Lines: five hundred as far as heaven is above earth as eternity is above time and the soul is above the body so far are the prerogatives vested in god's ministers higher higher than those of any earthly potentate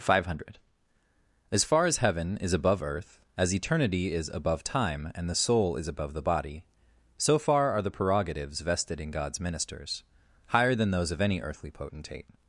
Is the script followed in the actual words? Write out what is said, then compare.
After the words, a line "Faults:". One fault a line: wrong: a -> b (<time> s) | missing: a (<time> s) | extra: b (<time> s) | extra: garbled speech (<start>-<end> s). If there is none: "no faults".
five hundred as far as heaven is above earth as eternity is above time and the soul is above the body so far are the prerogatives vested in god's ministers higher than those of any earthly potentate
Faults:
missing: higher (10.7 s)